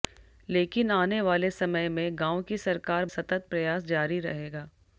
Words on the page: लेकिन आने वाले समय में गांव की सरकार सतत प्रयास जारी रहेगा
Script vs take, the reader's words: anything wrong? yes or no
no